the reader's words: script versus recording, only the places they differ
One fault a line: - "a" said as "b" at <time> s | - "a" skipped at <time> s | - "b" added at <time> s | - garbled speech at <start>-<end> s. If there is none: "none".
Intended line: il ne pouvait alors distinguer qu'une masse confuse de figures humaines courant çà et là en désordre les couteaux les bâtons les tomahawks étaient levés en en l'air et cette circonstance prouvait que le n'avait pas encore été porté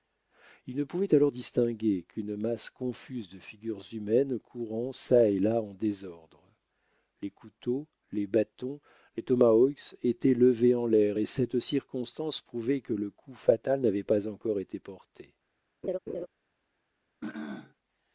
- "en" skipped at 10.9 s
- "coup fatal" added at 13.1 s